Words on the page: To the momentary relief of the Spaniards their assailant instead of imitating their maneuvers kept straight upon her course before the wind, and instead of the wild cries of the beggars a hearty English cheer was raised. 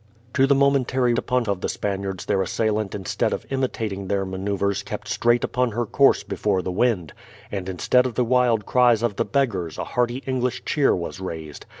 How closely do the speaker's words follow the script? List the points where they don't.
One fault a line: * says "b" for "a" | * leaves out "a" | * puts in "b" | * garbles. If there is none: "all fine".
* says "upon" for "relief"